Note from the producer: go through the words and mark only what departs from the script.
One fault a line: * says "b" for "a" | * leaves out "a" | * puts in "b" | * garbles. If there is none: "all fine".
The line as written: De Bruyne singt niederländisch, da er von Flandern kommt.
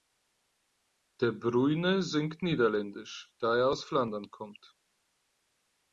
* says "aus" for "von"